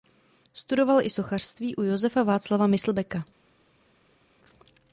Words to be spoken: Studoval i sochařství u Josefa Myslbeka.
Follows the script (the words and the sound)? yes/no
no